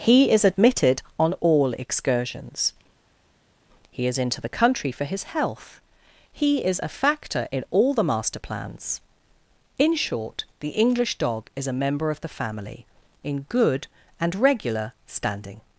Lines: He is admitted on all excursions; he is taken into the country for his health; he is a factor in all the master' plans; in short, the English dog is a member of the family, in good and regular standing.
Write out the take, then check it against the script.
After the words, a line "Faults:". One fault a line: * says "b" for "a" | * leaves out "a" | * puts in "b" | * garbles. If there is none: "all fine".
He is admitted on all excursions; he is into the country for his health; he is a factor in all the master' plans; in short, the English dog is a member of the family, in good and regular standing.
Faults:
* leaves out "taken"